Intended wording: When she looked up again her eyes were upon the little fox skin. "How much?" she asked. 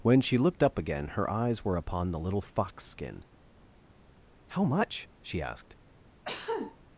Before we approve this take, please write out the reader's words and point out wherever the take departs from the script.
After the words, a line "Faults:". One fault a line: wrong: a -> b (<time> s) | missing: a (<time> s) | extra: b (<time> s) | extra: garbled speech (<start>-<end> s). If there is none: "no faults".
When she looked up again her eyes were upon the little fox skin. "How much?" she asked.
Faults:
no faults